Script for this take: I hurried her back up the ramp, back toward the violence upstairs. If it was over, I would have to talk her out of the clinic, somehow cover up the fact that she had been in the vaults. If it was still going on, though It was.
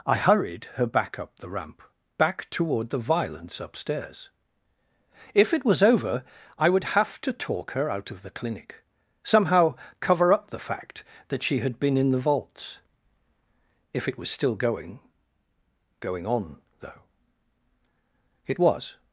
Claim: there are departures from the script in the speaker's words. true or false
true